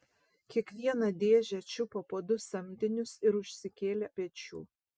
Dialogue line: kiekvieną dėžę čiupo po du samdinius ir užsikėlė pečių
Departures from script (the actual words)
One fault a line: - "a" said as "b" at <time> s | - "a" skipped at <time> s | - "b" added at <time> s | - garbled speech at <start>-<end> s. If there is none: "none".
none